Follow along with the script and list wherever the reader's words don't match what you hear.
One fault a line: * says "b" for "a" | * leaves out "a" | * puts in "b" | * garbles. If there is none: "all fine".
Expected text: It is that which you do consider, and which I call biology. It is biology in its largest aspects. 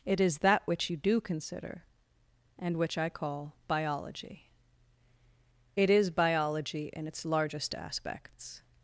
all fine